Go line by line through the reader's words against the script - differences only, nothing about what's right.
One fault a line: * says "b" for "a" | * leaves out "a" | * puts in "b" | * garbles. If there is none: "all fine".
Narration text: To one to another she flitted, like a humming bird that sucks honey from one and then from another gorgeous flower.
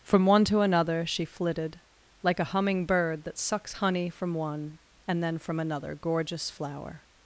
* says "From" for "To"